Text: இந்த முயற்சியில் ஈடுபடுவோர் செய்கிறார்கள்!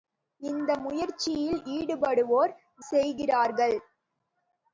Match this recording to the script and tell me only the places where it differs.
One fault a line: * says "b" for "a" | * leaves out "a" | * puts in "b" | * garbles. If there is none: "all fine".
all fine